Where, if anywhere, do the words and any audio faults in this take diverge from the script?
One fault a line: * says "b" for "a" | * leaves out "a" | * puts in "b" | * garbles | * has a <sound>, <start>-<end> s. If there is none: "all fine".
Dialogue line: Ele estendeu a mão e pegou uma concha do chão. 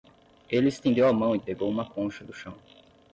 all fine